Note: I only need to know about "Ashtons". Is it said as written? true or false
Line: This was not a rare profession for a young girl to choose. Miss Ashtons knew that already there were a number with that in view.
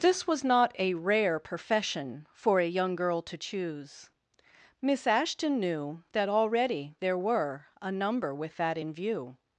false